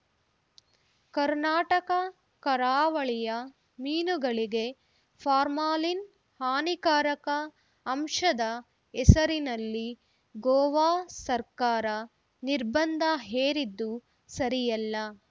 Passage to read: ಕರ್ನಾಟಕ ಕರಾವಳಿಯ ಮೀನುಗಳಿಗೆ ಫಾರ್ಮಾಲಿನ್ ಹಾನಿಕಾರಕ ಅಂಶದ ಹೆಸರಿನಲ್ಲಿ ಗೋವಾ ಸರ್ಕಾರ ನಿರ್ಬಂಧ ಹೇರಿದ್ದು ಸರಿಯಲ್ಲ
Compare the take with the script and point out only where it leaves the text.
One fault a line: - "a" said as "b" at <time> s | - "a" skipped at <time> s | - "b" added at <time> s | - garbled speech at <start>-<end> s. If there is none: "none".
none